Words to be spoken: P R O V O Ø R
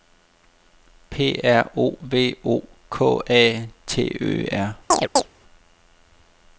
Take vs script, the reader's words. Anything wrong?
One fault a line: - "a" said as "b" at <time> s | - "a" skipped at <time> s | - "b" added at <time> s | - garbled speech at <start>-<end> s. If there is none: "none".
- "K A T" added at 2.9 s